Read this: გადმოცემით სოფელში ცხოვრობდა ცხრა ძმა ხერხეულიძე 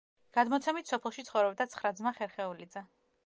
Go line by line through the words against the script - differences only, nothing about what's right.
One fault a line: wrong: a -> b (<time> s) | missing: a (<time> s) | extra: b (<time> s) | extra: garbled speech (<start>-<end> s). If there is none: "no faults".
no faults